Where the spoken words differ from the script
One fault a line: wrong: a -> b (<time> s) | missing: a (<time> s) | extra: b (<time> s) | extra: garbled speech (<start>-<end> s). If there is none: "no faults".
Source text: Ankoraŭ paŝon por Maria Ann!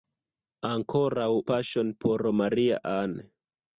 no faults